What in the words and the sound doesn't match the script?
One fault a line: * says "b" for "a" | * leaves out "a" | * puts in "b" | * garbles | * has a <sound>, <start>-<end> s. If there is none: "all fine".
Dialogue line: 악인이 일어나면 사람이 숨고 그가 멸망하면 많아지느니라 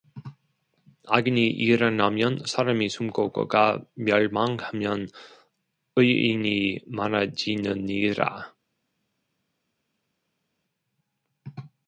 * puts in "의인이"